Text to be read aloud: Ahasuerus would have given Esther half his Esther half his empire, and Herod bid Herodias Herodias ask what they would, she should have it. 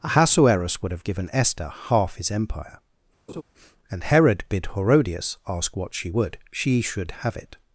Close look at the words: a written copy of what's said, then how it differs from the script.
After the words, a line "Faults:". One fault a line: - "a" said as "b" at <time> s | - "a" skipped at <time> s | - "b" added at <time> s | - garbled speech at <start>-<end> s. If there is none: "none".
Ahasuerus would have given Esther half his empire, and Herod bid Herodias ask what she would, she should have it.
Faults:
- "Esther half his" skipped at 2.3 s
- "Herodias" skipped at 5.4 s
- "they" said as "she" at 5.9 s